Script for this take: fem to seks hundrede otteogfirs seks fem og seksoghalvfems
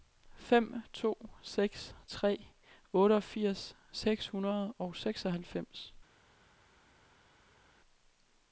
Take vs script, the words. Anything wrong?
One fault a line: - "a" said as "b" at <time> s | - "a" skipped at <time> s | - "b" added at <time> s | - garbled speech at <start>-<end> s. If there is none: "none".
- "hundrede" said as "tre" at 2.1 s
- "fem" said as "hundrede" at 4.3 s